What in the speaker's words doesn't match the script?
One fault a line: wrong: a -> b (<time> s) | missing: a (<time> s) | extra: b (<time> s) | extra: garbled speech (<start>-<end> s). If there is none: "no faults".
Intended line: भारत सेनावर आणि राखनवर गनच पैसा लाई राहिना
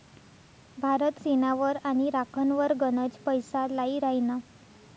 no faults